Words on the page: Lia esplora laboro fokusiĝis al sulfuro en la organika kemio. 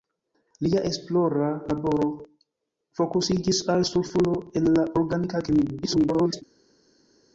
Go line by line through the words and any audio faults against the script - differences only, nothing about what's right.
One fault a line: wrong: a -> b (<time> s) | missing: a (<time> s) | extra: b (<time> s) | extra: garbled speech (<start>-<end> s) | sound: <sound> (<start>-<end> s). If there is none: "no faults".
extra: garbled speech (5.8-6.4 s)